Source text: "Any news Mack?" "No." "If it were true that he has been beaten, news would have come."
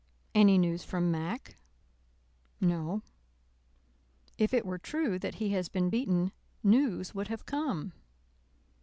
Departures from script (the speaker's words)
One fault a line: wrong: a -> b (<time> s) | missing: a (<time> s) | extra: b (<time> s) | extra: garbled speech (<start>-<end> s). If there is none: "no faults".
extra: from (0.8 s)